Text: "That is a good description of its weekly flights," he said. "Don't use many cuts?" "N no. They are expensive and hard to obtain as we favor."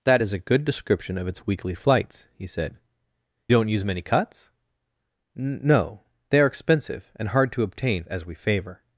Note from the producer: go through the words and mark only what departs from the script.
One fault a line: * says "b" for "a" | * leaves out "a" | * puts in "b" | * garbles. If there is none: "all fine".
all fine